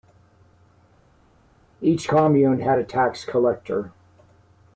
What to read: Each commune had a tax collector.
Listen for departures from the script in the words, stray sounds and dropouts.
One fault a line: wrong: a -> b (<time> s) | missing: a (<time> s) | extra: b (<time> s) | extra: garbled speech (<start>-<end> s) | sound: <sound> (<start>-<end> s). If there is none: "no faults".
no faults